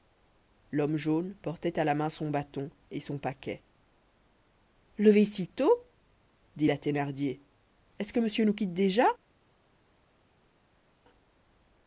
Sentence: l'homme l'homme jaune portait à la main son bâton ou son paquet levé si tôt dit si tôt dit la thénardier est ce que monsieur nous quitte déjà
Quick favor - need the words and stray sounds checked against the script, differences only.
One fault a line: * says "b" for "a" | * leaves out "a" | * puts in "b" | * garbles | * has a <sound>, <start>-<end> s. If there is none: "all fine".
* leaves out "l'homme"
* says "et" for "ou"
* leaves out "si tôt dit"